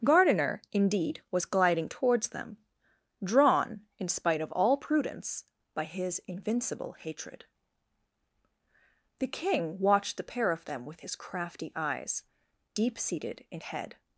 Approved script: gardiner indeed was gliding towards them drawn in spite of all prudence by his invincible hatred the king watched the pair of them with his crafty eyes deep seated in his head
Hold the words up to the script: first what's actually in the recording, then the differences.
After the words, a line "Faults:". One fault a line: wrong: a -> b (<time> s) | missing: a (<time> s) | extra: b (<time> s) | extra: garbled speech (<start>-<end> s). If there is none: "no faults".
gardiner indeed was gliding towards them drawn in spite of all prudence by his invincible hatred the king watched the pair of them with his crafty eyes deep seated in head
Faults:
missing: his (13.6 s)